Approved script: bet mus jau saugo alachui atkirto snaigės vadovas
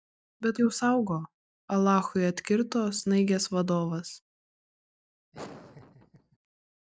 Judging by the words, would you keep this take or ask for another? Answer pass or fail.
fail